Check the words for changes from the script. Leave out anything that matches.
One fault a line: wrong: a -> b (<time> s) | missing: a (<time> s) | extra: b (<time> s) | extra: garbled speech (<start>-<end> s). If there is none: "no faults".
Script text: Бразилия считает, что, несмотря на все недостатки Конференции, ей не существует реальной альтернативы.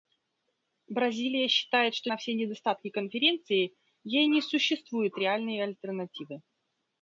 missing: несмотря (2.1 s)